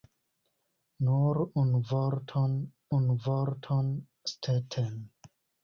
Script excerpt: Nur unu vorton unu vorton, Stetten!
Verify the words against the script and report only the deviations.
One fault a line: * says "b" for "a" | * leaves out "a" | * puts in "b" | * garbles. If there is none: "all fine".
all fine